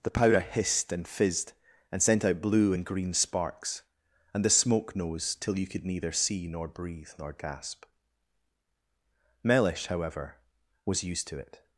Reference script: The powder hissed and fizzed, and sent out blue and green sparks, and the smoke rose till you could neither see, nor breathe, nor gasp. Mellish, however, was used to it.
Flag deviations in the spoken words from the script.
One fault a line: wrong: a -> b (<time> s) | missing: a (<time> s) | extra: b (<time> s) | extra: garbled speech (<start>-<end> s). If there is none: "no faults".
wrong: rose -> nose (4.9 s)